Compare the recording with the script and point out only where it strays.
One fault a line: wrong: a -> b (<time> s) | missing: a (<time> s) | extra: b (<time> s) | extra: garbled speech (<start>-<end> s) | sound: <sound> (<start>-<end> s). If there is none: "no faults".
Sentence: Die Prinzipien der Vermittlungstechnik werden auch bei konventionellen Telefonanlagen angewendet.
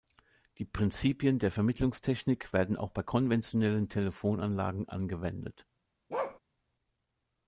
sound: bark (6.1-6.4 s)